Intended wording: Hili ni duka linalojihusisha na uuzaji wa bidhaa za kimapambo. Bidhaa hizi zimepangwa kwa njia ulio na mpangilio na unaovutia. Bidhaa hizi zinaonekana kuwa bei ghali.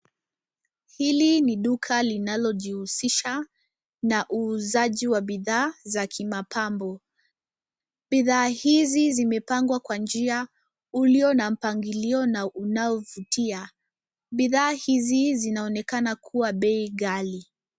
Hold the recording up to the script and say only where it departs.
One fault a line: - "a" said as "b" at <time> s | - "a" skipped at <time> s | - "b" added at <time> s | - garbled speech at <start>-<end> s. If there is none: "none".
none